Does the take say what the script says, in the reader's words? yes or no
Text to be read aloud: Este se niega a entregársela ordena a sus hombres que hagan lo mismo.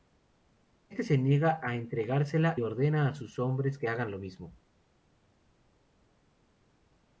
yes